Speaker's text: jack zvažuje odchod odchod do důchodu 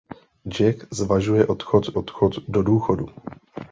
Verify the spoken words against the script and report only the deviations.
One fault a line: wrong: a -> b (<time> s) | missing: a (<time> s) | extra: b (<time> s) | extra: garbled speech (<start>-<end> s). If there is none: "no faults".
no faults